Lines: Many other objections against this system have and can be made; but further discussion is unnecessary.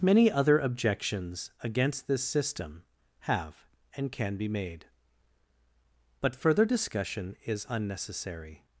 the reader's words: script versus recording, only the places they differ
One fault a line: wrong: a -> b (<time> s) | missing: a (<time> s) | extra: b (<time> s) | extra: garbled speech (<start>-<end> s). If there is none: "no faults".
no faults